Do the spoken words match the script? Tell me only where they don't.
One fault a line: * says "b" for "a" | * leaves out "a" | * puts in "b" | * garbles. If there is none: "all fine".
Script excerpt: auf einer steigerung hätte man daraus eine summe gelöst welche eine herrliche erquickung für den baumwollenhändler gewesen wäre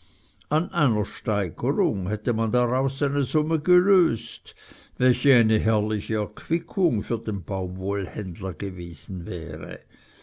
* says "an" for "auf"